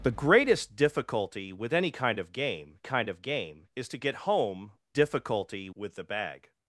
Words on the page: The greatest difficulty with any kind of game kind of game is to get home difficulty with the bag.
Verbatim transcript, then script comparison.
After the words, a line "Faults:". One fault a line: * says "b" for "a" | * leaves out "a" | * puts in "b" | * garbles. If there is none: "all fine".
The greatest difficulty with any kind of game kind of game is to get home difficulty with the bag.
Faults:
all fine